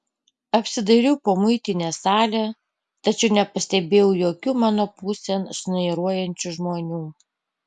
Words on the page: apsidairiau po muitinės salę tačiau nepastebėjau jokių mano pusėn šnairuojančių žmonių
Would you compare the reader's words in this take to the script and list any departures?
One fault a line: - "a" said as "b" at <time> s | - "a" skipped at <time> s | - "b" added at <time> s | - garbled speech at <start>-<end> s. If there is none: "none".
none